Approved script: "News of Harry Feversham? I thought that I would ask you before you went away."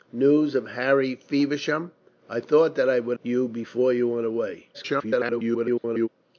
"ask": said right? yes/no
no